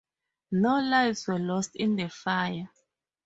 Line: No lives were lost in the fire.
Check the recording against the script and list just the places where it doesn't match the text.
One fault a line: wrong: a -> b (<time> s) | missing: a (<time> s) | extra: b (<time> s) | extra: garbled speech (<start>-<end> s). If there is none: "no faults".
no faults